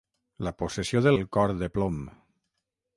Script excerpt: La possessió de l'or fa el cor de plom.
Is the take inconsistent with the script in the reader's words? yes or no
yes